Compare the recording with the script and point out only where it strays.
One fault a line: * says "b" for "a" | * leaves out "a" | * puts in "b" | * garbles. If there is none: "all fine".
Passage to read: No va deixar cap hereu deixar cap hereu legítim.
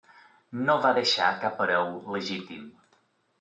* leaves out "deixar cap hereu"